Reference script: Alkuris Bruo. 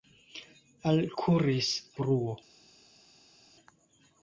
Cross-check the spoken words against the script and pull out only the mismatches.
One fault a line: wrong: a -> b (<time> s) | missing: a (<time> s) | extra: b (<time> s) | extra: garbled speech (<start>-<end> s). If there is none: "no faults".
no faults